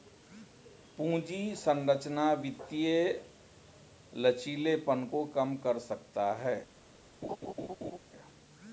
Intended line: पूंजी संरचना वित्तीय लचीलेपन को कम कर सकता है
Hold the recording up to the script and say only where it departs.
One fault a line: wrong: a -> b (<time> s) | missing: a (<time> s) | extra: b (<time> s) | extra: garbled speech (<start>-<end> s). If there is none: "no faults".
no faults